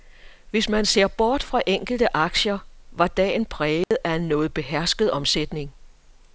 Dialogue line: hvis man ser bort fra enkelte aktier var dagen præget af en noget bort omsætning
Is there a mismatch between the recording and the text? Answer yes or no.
yes